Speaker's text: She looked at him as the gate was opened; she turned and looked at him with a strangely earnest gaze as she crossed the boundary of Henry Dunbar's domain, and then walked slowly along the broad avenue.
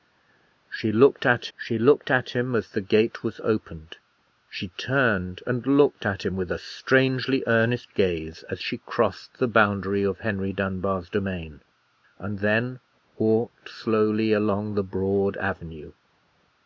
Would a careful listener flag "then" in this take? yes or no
no